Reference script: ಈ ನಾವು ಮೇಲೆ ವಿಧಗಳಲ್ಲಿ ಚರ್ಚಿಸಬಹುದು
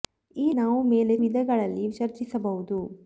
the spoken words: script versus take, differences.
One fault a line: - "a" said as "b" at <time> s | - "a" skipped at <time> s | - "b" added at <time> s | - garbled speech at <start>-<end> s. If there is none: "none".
none